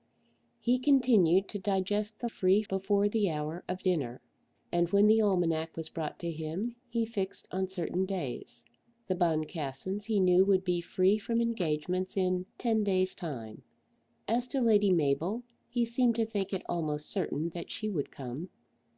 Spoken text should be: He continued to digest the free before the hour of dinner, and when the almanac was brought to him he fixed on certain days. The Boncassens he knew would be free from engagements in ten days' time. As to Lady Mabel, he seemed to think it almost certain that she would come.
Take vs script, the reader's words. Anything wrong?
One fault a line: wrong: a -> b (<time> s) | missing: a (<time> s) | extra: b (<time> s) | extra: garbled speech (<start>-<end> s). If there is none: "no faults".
no faults